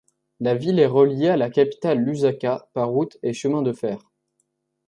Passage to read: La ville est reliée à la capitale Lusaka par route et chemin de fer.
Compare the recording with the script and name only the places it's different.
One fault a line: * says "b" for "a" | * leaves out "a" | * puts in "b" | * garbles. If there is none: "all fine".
all fine